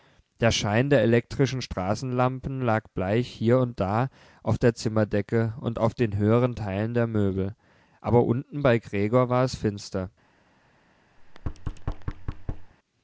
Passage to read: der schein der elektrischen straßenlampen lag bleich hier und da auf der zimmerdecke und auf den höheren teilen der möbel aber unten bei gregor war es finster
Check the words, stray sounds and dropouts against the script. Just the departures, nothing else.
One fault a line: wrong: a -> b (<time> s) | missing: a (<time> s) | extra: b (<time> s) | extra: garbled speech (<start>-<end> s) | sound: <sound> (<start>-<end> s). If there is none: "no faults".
sound: thud (11.2-12.7 s)